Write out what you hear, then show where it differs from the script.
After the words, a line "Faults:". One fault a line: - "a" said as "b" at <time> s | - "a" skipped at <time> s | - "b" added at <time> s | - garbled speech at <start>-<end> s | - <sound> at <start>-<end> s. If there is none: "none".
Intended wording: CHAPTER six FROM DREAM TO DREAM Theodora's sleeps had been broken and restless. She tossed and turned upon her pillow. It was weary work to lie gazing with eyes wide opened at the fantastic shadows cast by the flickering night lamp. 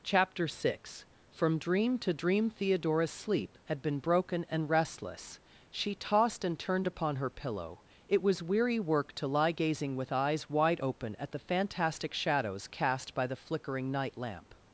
CHAPTER six FROM DREAM TO DREAM Theodora's sleep had been broken and restless. She tossed and turned upon her pillow. It was weary work to lie gazing with eyes wide open at the fantastic shadows cast by the flickering night lamp.
Faults:
- "sleeps" said as "sleep" at 3.1 s
- "opened" said as "open" at 10.8 s